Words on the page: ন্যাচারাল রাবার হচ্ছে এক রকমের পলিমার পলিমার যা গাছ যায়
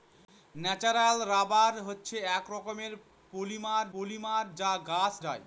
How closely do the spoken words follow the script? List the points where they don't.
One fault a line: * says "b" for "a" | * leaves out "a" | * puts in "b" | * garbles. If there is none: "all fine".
all fine